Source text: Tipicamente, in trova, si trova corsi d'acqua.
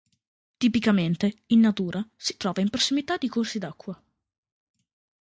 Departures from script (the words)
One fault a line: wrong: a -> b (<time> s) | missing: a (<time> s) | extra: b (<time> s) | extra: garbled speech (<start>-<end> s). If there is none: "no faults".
wrong: trova -> natura (1.6 s)
extra: in prossimità di (2.6 s)